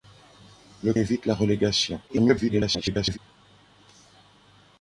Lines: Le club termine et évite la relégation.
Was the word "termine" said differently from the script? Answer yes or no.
yes